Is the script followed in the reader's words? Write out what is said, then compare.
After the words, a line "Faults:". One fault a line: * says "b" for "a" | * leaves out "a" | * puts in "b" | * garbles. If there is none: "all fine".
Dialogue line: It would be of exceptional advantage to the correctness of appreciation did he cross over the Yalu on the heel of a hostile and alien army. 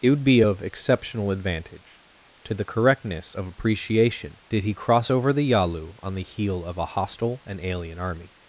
It would be of exceptional advantage to the correctness of appreciation did he cross over the Yalu on the heel of a hostile and alien army.
Faults:
all fine